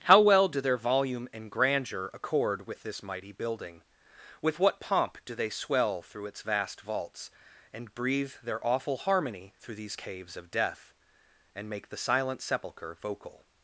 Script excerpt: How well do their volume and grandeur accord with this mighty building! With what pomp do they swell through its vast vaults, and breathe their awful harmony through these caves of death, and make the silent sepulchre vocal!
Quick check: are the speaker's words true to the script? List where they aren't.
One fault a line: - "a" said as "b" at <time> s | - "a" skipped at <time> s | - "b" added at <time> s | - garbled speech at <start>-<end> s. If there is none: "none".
none